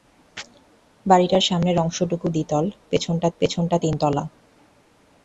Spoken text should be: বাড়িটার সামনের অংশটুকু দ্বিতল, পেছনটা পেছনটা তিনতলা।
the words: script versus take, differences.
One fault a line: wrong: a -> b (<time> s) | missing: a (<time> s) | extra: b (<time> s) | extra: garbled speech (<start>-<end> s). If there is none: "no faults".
no faults